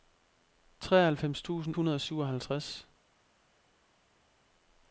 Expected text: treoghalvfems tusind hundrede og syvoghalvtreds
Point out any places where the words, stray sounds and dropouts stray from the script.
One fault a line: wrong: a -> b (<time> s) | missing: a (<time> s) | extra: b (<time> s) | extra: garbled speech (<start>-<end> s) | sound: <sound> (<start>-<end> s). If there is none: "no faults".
no faults